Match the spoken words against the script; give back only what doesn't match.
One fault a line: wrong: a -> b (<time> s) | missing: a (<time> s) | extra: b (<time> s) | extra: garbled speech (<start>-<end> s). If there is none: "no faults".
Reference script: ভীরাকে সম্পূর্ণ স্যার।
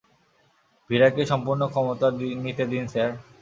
extra: ক্ষমতা নিতে দিন (1.7 s)